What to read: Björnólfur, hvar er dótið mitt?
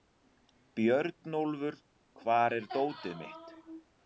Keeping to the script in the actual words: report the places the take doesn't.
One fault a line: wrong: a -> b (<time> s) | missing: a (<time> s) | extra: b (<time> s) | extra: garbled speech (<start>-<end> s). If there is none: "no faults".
no faults